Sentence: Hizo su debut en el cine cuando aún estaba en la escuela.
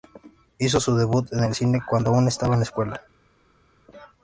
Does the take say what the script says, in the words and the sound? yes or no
yes